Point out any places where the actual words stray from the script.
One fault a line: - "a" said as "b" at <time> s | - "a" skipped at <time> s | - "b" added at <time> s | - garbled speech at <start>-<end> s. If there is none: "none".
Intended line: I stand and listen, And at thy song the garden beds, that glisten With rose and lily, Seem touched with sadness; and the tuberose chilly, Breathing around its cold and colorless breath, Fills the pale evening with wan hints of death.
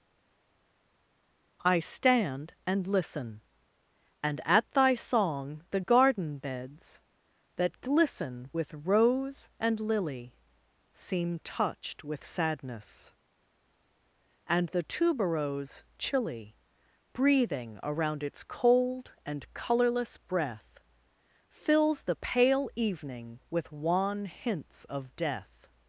none